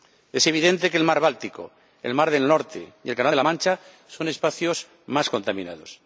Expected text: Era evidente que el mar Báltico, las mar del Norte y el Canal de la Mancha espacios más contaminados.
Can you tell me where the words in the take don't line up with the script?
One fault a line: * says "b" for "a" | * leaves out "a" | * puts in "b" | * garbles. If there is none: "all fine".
* says "Es" for "Era"
* says "el" for "las"
* puts in "son"